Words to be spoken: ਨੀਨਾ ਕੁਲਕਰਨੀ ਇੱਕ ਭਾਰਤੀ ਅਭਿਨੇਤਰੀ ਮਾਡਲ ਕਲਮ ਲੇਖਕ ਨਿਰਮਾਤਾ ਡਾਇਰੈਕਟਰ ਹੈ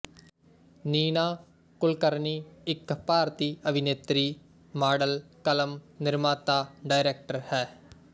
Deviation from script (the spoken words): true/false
true